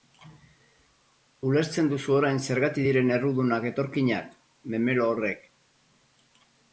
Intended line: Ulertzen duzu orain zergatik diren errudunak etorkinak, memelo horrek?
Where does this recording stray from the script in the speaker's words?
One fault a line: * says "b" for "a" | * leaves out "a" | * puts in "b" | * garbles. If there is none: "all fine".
all fine